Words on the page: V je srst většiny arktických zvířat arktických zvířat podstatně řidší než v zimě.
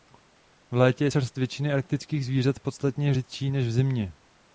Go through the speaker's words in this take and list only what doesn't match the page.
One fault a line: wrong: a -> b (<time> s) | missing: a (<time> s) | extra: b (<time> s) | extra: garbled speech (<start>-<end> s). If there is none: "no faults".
extra: létě (0.8 s)
missing: arktických zvířat (2.6 s)